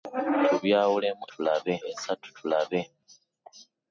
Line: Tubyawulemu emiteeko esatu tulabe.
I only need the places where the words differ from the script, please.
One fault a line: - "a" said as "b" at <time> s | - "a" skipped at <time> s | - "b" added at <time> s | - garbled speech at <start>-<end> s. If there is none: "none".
- "emiteeko" said as "tulabe" at 1.3 s